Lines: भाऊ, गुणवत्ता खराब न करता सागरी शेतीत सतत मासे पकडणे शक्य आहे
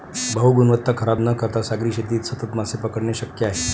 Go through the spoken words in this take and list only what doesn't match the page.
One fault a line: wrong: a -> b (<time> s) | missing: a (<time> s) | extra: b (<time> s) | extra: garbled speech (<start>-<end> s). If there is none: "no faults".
no faults